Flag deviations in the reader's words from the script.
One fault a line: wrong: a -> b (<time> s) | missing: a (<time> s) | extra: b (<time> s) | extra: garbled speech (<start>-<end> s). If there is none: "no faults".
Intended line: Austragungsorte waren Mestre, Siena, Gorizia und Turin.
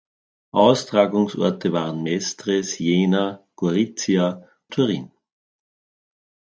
missing: und (4.4 s)